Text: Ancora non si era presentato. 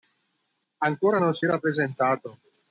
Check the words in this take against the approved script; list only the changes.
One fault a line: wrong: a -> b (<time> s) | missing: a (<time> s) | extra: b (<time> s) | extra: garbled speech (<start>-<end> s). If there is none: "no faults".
no faults